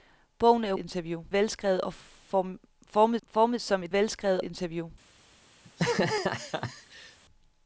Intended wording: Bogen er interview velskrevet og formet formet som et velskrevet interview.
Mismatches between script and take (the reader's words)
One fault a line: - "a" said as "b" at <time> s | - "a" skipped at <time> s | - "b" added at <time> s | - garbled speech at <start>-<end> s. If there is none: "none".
none